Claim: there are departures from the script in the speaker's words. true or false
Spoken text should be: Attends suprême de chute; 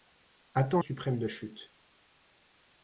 false